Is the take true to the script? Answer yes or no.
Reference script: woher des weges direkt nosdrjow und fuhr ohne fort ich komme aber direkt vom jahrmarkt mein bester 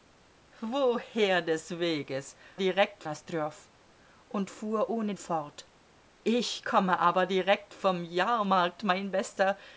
yes